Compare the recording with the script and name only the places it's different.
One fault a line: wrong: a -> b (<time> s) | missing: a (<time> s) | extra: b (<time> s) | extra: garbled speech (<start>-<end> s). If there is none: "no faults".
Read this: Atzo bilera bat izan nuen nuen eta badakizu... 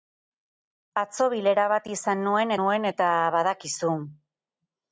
no faults